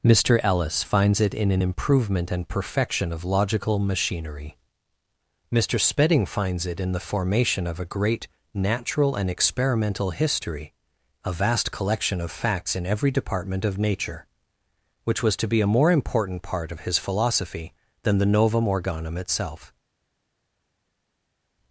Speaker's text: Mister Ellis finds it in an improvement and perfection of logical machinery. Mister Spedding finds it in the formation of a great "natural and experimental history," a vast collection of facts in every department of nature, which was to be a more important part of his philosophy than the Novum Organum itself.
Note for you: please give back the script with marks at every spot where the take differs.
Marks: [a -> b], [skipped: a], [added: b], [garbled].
Mister Ellis finds it in an improvement and perfection of logical machinery. Mister Spedding finds it in the formation of a great "natural and experimental history," a vast collection of facts in every department of nature, which was to be a more important part of his philosophy than the Novum Organum itself.